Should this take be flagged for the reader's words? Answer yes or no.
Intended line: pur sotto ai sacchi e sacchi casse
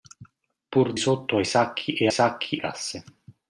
no